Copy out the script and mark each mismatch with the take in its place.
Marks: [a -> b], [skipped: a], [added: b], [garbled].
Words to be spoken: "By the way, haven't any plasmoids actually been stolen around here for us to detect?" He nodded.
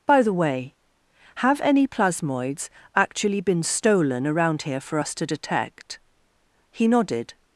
"By the way, [haven't -> have] any plasmoids actually been stolen around here for us to detect?" He nodded.